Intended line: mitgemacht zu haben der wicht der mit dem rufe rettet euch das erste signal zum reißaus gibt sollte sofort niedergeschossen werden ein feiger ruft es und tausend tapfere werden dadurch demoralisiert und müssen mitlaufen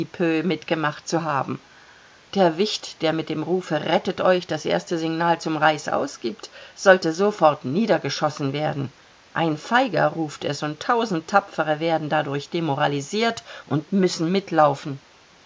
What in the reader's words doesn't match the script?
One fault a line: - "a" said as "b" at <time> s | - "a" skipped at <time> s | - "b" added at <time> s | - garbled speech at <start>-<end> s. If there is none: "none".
none